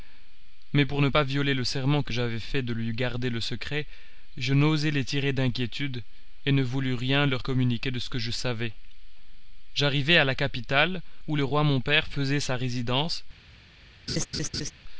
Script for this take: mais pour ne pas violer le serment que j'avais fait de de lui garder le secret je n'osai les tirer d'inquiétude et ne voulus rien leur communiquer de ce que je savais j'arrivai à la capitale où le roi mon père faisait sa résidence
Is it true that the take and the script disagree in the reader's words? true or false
true